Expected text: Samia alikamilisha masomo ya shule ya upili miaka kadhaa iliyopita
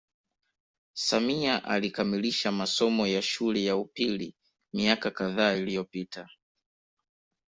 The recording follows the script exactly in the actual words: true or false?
true